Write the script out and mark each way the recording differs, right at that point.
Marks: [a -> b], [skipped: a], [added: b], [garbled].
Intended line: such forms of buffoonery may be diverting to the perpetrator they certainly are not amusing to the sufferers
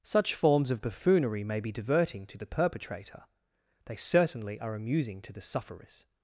such forms of buffoonery may be diverting to the perpetrator they certainly are [skipped: not] amusing to the sufferers